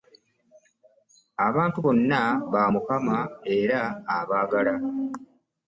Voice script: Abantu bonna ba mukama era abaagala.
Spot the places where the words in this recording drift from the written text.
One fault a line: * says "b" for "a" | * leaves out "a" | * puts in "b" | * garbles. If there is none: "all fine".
all fine